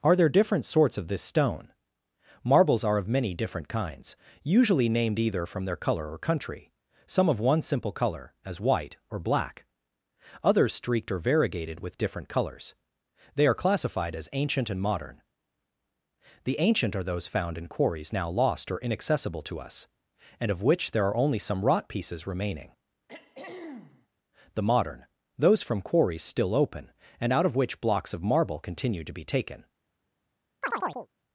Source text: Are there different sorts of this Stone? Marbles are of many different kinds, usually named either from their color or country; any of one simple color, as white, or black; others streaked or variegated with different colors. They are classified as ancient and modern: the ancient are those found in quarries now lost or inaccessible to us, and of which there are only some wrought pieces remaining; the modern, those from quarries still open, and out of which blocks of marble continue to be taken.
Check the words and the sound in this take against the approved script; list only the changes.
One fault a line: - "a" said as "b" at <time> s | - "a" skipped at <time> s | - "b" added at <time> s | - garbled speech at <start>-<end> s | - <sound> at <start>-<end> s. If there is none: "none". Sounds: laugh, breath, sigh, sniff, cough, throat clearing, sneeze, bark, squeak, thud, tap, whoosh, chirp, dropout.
- "any" said as "some" at 7.0 s
- throat clearing at 23.1-24.1 s
- chirp at 30.6-31.1 s